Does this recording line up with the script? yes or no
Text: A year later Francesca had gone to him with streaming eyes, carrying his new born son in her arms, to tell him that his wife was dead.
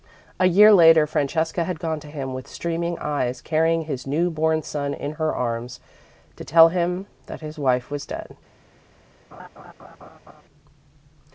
yes